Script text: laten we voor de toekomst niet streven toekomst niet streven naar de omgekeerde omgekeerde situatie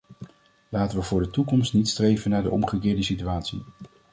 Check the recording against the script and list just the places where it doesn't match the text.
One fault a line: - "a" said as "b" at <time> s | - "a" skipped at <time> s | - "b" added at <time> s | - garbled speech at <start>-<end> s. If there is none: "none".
- "toekomst niet streven" skipped at 2.3 s
- "omgekeerde" skipped at 3.0 s